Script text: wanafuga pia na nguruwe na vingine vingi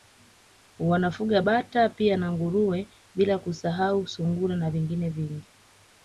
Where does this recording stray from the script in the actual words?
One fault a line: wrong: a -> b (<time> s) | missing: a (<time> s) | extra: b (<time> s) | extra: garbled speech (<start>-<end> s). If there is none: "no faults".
extra: bata (1.4 s)
extra: bila kusahau sungura (3.1 s)